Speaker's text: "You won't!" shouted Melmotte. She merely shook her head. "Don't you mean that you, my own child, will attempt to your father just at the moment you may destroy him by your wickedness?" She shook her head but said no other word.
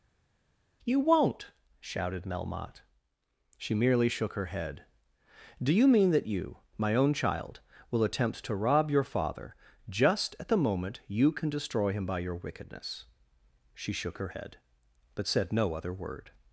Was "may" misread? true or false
true